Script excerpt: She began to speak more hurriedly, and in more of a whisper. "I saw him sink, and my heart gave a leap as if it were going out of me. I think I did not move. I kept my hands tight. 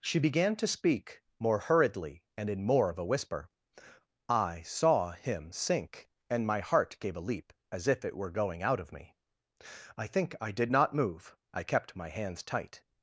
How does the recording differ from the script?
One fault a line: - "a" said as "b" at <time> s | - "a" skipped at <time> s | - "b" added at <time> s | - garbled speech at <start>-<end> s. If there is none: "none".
none